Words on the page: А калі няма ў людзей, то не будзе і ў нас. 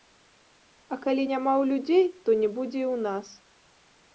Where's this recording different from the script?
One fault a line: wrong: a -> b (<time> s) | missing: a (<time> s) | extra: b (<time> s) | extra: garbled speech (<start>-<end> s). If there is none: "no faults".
no faults